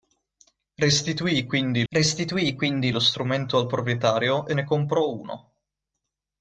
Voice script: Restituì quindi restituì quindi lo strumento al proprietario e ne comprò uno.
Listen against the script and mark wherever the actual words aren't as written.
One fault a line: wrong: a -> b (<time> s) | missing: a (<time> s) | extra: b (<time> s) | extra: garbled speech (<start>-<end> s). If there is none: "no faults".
no faults